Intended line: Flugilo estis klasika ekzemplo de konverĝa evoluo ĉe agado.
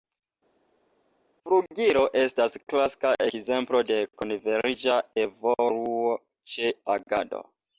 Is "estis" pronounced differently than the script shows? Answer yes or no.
yes